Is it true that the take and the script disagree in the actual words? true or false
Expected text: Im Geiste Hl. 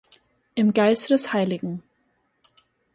true